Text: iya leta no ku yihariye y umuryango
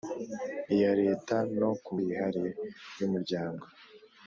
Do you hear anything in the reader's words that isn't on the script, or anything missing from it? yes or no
no